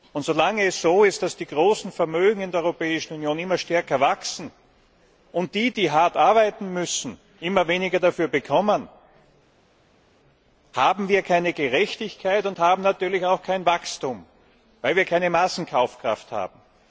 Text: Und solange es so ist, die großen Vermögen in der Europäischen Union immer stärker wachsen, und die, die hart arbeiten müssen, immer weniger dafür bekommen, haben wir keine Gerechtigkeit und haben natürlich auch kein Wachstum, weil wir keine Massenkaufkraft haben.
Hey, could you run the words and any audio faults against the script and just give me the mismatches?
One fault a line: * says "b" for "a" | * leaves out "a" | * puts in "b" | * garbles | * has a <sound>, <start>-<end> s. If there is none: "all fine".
* puts in "dass"